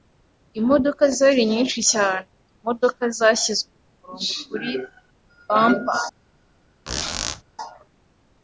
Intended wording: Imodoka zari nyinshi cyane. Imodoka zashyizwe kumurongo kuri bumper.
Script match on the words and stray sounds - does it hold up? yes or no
no